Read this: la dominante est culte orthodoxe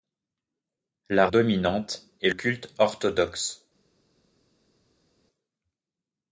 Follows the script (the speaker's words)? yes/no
yes